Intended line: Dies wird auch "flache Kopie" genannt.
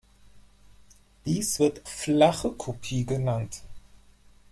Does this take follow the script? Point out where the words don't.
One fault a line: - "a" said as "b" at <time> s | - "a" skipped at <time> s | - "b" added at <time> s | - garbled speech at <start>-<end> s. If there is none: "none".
- "auch" skipped at 1.8 s